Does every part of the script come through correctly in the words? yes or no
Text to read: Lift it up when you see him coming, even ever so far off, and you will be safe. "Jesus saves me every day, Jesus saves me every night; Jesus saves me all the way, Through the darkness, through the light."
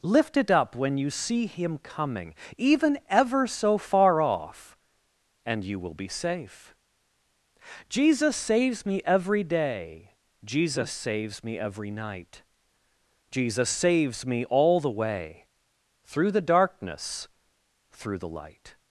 yes